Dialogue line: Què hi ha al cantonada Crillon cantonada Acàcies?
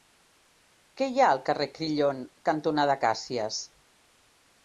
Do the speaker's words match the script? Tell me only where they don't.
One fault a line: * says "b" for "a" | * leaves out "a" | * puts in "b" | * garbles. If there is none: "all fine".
* says "carrer" for "cantonada"